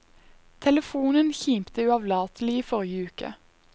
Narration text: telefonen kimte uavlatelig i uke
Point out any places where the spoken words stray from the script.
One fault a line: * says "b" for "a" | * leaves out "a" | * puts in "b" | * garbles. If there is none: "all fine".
* puts in "forrige"